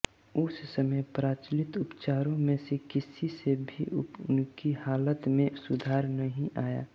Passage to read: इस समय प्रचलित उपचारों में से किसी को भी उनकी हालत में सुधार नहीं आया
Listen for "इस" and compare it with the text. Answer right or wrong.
wrong